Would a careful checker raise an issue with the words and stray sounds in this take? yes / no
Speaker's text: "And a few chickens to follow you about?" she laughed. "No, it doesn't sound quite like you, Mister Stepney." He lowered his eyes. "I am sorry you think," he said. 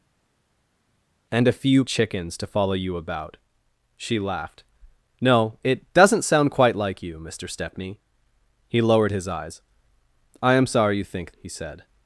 no